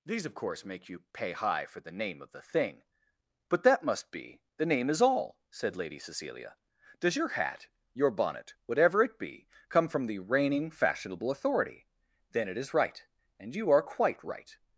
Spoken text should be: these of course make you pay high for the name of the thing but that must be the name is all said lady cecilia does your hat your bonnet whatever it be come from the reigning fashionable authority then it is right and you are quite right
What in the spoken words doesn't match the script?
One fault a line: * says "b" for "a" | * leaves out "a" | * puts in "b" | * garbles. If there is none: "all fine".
all fine